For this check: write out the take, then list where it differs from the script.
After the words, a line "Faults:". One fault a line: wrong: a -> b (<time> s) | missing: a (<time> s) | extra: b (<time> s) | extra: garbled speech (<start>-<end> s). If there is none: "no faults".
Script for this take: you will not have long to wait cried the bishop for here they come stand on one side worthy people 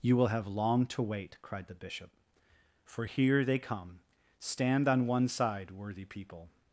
you will have long to wait cried the bishop for here they come stand on one side worthy people
Faults:
missing: not (0.3 s)